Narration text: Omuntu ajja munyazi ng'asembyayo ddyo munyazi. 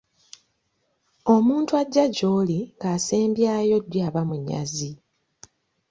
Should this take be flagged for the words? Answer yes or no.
yes